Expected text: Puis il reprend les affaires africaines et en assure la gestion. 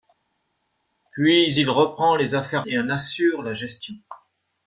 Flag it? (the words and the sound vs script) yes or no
yes